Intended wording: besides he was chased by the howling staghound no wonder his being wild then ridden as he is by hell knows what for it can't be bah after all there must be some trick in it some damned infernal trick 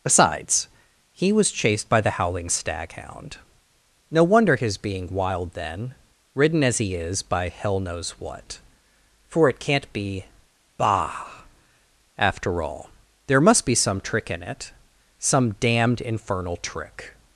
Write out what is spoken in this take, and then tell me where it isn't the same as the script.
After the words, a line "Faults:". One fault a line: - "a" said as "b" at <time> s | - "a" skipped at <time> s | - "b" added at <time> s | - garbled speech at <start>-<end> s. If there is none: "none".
besides he was chased by the howling staghound no wonder his being wild then ridden as he is by hell knows what for it can't be bah after all there must be some trick in it some damned infernal trick
Faults:
none